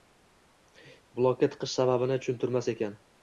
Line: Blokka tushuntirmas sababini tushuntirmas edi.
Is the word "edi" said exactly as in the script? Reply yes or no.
no